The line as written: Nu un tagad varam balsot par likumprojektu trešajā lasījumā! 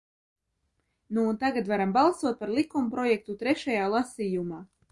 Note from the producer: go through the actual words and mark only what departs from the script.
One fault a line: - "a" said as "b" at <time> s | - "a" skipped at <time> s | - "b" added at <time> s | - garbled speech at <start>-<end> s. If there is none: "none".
none